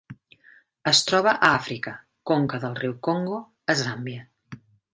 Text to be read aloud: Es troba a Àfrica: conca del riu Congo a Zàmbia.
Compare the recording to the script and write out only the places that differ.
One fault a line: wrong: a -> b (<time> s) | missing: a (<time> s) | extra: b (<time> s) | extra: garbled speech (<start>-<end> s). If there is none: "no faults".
no faults